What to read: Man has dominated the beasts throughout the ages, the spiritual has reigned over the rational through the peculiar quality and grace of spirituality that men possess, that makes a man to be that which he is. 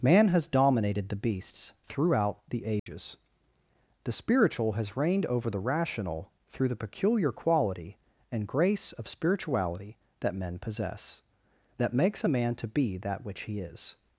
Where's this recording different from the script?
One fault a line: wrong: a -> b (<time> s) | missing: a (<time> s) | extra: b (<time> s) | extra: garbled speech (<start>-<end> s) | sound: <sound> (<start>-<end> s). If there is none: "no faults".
sound: dropout (2.8-2.9 s)